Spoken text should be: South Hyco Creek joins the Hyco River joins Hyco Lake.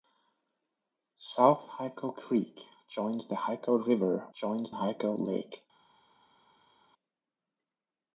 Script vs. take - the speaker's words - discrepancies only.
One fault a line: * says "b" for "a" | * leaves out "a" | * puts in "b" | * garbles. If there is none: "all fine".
all fine